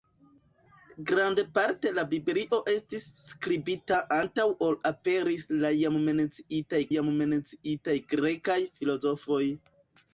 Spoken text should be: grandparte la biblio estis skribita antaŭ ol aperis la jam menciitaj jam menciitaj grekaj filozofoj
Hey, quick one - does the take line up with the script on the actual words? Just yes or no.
yes